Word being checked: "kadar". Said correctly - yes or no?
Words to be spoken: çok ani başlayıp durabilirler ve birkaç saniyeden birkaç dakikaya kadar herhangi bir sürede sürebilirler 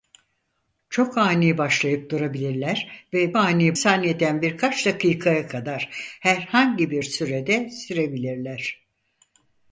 yes